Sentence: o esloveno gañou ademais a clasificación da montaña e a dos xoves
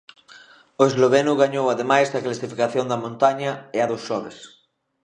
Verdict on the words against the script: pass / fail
pass